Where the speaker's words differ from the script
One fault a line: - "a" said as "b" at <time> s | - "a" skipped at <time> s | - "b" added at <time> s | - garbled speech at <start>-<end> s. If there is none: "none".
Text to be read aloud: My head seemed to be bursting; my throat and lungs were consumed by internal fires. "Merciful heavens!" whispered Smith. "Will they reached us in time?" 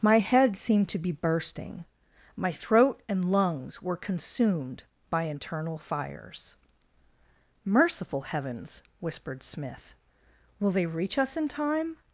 - "reached" said as "reach" at 10.9 s